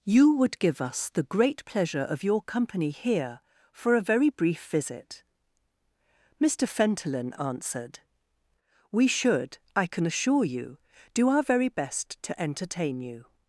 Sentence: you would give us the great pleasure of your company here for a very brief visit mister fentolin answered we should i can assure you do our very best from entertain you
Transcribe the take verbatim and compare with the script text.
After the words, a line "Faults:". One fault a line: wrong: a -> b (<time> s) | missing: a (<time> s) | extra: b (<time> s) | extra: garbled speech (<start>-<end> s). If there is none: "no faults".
you would give us the great pleasure of your company here for a very brief visit mister fentolin answered we should i can assure you do our very best to entertain you
Faults:
wrong: from -> to (12.2 s)